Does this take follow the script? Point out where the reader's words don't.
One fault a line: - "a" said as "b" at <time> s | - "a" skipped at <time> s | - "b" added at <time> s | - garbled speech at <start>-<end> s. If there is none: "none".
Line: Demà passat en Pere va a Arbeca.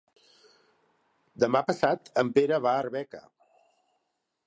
none